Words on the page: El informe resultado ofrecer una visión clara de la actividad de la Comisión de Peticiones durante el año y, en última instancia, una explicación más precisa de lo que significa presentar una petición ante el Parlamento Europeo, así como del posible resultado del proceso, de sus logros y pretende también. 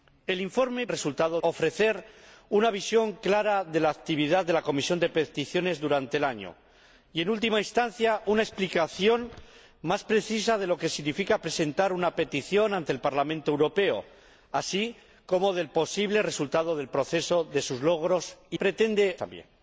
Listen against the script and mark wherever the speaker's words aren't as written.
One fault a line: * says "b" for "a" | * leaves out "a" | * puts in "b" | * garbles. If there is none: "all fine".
all fine